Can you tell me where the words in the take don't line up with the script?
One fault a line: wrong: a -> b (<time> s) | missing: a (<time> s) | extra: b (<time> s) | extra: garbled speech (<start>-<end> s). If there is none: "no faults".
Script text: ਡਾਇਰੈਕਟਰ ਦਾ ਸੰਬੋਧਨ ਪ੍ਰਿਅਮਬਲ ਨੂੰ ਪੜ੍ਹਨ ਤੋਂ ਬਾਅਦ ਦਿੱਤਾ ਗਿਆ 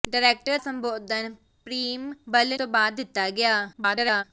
missing: ਦਾ (0.6 s)
missing: ਨੂੰ ਪੜ੍ਹਨ (2.6 s)
extra: garbled speech (3.7-4.2 s)